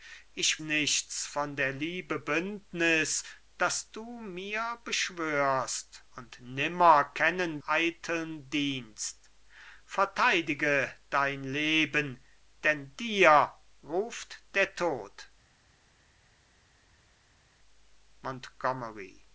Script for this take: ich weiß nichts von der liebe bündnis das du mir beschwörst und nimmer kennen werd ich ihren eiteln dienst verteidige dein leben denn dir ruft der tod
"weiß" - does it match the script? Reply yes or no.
no